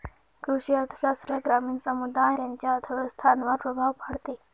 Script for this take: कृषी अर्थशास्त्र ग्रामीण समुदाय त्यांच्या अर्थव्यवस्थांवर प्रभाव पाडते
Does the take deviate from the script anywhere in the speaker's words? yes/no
no